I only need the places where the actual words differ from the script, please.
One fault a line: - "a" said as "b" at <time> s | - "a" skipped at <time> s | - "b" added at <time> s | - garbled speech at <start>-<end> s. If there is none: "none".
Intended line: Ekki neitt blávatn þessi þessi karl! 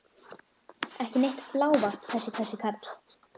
none